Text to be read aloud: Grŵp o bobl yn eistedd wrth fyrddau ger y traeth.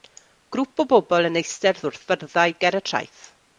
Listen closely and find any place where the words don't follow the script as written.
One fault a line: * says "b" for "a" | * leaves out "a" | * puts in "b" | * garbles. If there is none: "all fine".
all fine